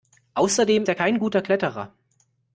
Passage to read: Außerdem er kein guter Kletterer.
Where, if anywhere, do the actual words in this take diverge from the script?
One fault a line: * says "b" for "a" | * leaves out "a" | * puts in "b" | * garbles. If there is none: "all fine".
all fine